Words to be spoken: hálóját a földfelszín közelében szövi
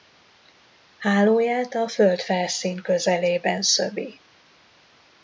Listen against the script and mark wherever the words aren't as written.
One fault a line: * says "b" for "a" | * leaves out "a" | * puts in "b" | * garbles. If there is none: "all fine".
all fine